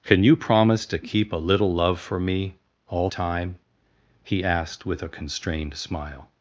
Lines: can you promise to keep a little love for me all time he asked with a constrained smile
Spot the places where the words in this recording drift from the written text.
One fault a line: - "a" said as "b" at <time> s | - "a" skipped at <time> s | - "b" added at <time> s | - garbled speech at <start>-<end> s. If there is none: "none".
none